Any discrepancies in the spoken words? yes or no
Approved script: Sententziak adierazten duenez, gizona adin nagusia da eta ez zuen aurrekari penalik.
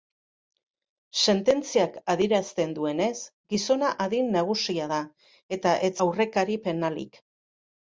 yes